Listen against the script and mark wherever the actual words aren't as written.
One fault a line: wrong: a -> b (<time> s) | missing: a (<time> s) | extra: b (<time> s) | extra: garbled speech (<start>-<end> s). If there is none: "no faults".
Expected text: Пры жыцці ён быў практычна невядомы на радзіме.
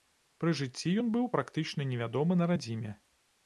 no faults